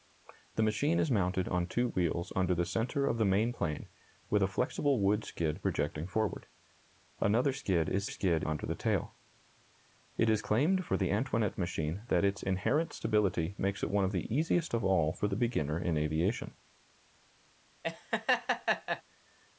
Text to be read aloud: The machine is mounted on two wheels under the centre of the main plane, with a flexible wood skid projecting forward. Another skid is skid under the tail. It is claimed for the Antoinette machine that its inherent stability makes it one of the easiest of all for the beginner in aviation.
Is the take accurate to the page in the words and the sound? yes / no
no